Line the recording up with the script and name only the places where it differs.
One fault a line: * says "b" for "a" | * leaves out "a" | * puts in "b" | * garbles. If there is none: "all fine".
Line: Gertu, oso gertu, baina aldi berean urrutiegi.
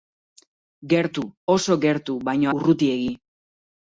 * leaves out "aldi berean"